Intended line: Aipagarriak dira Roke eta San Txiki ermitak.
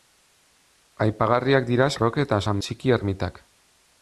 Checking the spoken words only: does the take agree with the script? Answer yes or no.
yes